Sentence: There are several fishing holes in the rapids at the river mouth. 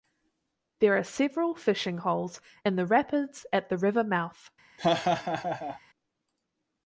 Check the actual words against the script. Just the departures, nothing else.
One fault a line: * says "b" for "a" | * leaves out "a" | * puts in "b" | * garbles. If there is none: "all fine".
all fine